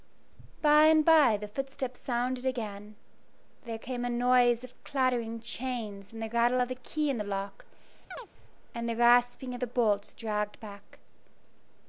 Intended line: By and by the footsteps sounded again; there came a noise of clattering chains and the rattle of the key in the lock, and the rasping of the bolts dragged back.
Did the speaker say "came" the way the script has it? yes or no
yes